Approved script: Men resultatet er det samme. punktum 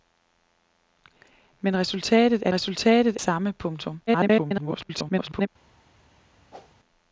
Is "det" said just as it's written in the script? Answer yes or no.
no